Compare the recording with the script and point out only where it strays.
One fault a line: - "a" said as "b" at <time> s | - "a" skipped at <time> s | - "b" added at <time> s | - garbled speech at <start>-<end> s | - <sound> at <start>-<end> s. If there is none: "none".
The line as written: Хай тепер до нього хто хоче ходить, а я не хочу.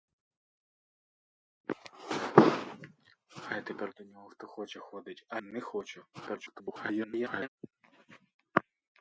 - "я" skipped at 5.4 s
- garbled speech at 6.1-7.5 s